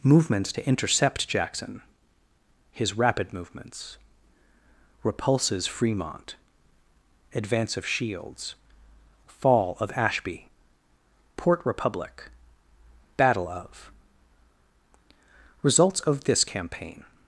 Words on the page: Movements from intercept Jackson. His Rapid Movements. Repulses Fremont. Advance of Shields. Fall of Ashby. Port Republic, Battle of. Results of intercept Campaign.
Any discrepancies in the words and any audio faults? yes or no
yes